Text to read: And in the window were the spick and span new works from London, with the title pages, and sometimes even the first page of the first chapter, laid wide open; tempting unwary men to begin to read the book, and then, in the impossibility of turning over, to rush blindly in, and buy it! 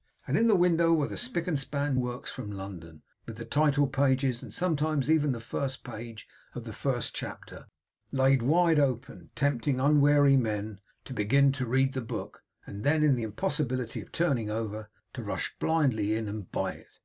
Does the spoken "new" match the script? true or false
false